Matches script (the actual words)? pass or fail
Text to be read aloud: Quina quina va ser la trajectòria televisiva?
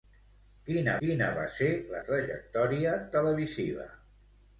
pass